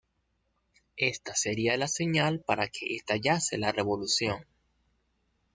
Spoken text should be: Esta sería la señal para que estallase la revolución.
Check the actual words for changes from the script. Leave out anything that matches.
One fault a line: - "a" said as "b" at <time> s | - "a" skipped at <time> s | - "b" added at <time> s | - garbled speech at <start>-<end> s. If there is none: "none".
none